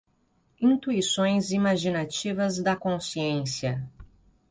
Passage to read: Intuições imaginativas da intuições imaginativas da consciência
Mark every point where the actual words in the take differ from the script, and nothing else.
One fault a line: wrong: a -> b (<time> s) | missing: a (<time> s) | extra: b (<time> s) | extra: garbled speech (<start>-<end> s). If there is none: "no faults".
missing: intuições imaginativas da (2.8 s)